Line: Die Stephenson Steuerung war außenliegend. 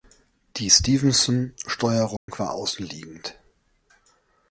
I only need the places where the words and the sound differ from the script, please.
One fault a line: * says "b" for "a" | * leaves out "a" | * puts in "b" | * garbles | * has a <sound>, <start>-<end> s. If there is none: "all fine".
* has a dropout, 2.2-2.3 s